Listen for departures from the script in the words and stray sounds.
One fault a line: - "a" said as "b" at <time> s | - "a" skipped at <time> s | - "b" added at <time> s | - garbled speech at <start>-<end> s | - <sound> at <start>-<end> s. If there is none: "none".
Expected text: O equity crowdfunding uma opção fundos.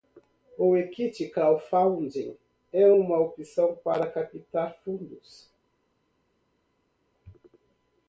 - "é" added at 2.7 s
- "para captar" added at 3.8 s